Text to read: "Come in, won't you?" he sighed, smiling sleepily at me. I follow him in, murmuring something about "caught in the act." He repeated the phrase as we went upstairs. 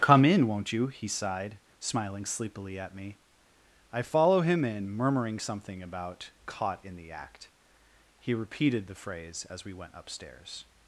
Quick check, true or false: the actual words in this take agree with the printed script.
true